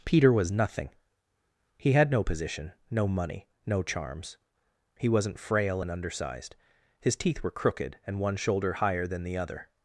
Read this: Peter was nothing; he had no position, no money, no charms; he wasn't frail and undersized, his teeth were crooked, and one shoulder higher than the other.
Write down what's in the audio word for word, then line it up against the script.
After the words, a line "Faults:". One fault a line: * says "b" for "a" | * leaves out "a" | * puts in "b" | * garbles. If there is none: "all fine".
Peter was nothing; he had no position, no money, no charms; he wasn't frail and undersized, his teeth were crooked, and one shoulder higher than the other.
Faults:
all fine